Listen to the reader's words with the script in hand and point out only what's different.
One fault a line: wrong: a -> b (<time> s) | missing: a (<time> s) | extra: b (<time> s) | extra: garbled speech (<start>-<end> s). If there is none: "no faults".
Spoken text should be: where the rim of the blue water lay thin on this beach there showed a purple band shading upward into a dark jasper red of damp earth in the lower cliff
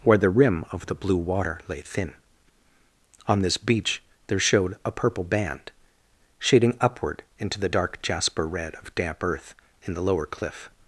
wrong: a -> the (7.6 s)